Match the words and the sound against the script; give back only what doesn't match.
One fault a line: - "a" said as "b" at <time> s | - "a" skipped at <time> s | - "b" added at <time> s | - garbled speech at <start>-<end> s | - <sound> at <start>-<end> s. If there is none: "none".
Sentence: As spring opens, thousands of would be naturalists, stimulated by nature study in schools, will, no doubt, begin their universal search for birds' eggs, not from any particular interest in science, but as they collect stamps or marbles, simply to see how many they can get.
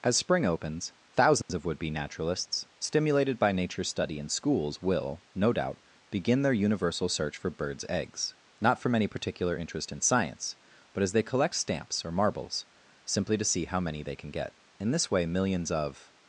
- dropout at 1.4-1.5 s
- "In this way millions of" added at 14.8 s